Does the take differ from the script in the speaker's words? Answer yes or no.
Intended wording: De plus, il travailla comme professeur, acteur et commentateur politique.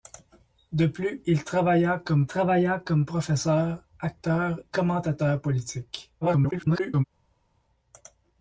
yes